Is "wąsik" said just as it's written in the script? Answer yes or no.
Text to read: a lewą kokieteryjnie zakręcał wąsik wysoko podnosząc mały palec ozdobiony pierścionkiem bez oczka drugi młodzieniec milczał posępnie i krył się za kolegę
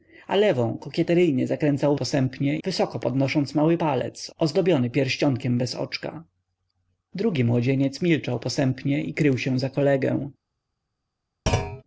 no